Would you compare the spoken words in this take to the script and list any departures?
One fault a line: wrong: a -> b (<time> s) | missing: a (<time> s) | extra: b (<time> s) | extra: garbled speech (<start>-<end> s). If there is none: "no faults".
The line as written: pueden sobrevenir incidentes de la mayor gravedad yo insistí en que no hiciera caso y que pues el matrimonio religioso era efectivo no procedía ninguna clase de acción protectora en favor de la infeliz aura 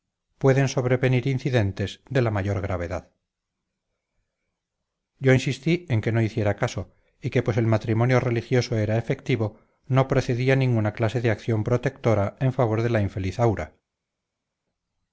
no faults